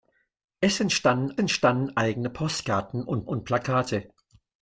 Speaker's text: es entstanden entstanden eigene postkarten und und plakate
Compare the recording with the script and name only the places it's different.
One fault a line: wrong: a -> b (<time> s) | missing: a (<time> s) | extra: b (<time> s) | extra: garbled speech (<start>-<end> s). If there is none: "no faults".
no faults